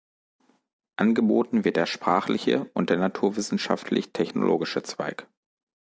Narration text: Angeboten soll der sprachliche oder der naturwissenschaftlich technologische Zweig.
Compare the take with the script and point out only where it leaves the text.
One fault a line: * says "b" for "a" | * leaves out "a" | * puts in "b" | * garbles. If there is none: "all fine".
* says "wird" for "soll"
* says "und" for "oder"